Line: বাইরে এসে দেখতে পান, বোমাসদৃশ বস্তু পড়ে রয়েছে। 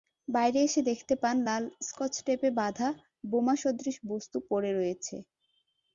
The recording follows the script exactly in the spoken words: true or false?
false